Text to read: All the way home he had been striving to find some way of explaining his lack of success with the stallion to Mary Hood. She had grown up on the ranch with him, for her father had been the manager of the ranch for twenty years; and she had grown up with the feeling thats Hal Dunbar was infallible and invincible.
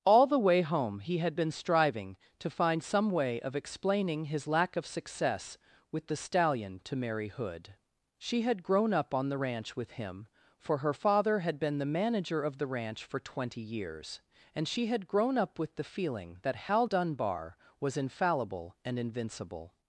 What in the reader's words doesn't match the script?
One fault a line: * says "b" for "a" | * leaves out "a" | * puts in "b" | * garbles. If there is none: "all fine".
* says "that" for "thats"